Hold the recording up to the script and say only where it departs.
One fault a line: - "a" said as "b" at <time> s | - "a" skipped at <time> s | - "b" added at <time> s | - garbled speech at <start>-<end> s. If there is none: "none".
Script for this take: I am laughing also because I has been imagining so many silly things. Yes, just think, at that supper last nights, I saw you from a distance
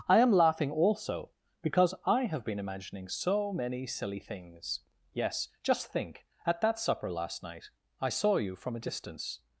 - "has" said as "have" at 2.2 s
- "nights" said as "night" at 7.4 s